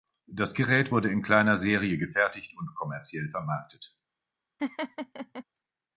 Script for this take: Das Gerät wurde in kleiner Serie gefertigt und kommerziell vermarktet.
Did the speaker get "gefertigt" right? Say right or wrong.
right